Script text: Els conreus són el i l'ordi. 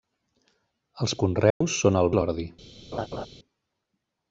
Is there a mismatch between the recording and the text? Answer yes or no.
no